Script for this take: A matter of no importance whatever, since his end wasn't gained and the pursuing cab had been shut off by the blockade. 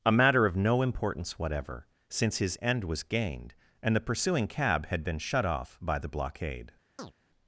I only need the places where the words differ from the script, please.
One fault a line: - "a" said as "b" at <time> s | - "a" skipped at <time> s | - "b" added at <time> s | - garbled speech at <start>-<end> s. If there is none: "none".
- "wasn't" said as "was" at 2.9 s